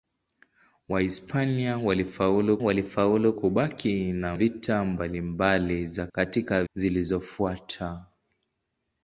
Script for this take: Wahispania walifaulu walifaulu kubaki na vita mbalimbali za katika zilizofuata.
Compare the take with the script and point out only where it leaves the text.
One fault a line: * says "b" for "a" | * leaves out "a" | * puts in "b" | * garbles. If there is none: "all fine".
all fine